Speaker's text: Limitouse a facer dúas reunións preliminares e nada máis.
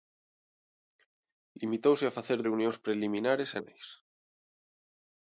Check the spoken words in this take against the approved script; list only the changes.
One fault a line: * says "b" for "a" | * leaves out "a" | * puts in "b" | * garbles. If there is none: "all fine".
* leaves out "dúas"
* leaves out "nada"